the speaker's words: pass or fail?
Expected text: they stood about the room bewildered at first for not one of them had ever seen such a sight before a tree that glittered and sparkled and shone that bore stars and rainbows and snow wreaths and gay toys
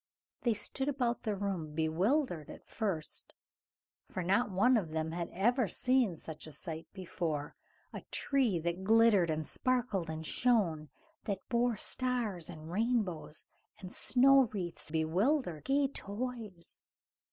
fail